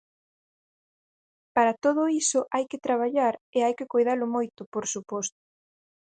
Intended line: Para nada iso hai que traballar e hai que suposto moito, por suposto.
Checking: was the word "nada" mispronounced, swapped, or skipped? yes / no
yes